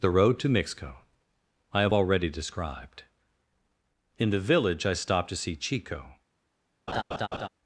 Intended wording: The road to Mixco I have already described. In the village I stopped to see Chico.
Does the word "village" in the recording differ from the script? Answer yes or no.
no